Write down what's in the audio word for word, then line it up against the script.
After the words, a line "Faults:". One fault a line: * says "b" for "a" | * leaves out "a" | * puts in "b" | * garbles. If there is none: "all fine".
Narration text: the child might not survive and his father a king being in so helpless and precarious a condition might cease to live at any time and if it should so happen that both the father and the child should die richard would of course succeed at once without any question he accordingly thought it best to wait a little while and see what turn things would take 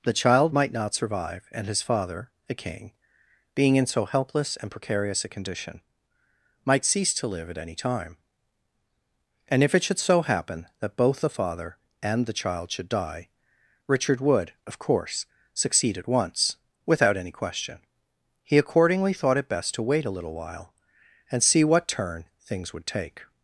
the child might not survive and his father a king being in so helpless and precarious a condition might cease to live at any time and if it should so happen that both the father and the child should die richard would of course succeed at once without any question he accordingly thought it best to wait a little while and see what turn things would take
Faults:
all fine